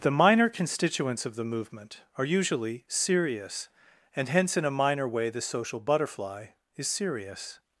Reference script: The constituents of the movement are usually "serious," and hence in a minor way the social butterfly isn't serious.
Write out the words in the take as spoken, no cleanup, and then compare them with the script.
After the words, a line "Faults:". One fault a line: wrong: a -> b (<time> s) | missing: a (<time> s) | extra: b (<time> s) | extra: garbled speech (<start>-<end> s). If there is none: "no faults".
The minor constituents of the movement are usually "serious," and hence in a minor way the social butterfly is serious.
Faults:
extra: minor (0.1 s)
wrong: isn't -> is (6.8 s)